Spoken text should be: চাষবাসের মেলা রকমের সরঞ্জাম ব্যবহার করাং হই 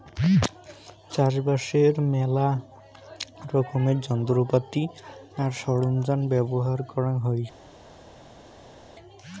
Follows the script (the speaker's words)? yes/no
no